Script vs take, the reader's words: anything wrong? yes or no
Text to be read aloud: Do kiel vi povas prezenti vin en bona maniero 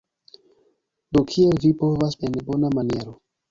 yes